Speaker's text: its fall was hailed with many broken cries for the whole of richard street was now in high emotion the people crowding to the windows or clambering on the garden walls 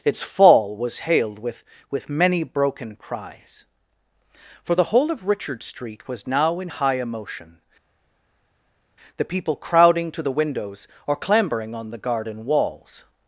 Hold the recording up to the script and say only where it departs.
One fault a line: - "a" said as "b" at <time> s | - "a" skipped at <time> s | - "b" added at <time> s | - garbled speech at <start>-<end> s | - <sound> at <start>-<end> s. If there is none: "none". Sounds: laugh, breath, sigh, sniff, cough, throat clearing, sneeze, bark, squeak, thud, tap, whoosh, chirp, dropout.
- "with" added at 1.9 s